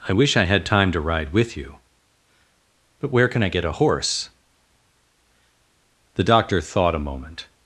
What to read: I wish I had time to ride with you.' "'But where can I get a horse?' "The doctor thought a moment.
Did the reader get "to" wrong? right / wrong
right